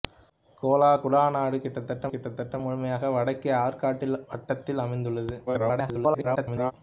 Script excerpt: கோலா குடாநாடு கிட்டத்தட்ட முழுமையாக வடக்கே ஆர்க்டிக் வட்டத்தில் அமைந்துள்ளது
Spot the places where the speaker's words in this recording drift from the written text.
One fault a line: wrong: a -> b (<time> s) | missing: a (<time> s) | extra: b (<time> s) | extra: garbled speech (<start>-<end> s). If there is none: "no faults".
extra: கிட்டத்தட்ட (2.1 s)
extra: garbled speech (5.5-6.7 s)